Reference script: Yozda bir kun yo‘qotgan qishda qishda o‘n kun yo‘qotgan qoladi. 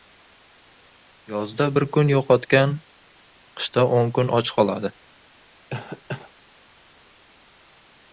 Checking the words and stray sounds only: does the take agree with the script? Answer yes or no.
no